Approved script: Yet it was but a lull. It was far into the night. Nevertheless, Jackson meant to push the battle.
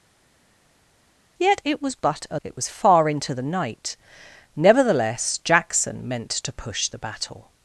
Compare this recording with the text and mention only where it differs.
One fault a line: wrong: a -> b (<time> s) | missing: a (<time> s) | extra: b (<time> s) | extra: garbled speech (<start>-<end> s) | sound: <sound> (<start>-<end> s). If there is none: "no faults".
missing: lull (2.4 s)